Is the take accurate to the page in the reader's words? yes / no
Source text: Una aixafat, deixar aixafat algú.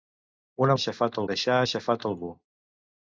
yes